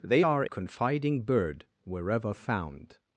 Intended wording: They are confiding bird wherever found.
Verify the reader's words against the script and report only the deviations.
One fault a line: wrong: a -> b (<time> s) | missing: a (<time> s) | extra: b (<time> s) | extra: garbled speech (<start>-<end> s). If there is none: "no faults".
no faults